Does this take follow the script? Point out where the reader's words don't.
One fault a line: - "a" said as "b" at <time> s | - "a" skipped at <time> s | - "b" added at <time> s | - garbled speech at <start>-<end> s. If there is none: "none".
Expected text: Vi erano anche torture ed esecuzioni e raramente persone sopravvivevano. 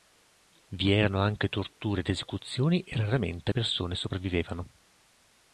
none